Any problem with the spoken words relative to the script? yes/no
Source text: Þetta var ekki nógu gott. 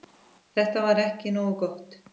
no